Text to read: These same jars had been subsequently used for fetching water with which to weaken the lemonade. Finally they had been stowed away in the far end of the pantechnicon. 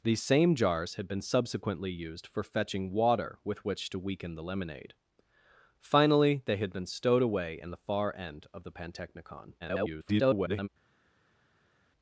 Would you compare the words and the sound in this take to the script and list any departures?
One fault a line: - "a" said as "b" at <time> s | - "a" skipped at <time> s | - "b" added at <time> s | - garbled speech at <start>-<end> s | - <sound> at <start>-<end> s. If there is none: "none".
- garbled speech at 9.6-10.7 s